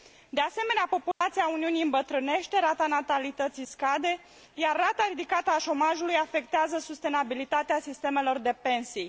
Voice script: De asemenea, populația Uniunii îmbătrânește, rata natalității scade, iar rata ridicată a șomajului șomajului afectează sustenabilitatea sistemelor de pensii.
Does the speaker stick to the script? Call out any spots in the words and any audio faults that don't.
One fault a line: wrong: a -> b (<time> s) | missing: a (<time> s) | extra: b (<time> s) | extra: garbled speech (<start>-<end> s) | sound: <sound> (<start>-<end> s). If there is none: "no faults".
sound: dropout (1.1-1.2 s)
missing: șomajului (6.1 s)